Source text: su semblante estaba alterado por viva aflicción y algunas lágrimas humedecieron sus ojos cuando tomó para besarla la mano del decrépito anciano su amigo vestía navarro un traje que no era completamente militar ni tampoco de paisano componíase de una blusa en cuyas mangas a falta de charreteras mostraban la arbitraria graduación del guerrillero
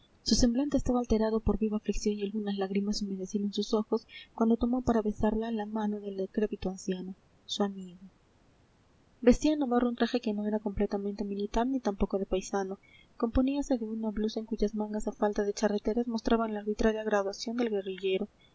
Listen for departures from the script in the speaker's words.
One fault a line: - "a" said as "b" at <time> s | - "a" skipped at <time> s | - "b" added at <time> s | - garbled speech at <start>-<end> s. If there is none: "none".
none